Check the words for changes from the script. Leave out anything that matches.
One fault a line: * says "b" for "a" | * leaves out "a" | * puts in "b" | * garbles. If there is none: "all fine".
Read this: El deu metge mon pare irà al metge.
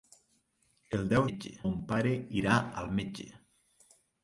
all fine